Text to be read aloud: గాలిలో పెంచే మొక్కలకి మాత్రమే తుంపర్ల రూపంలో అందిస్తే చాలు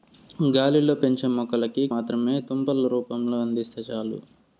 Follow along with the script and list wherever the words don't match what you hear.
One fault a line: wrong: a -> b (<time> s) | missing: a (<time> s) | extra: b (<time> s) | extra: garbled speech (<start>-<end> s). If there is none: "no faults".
no faults